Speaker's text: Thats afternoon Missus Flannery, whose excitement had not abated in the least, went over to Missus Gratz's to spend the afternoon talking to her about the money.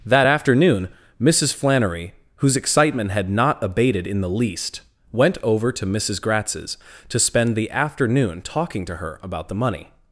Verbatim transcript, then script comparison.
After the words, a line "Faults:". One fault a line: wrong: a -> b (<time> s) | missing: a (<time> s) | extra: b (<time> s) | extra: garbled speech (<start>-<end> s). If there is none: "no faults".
That afternoon Missus Flannery, whose excitement had not abated in the least, went over to Missus Gratz's to spend the afternoon talking to her about the money.
Faults:
wrong: Thats -> That (0.1 s)